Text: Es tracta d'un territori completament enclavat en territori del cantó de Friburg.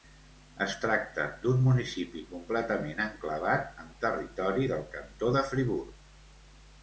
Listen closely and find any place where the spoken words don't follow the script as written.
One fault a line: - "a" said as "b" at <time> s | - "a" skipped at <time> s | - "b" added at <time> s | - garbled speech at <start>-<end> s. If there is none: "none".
- "territori" said as "municipi" at 1.6 s